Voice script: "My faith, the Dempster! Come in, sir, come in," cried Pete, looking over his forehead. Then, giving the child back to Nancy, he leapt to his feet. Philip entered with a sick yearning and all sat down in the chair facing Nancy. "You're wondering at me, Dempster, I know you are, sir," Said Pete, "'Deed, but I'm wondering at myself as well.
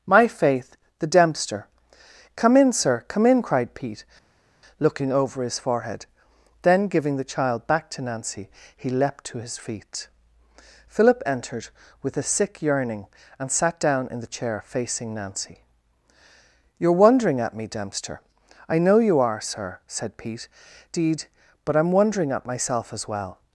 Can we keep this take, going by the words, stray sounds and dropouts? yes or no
no